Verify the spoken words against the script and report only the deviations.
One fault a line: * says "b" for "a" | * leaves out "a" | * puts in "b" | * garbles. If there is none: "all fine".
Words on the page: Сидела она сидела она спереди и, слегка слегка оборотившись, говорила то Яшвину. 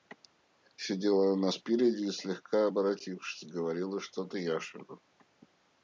* leaves out "сидела она"
* leaves out "слегка"
* puts in "что"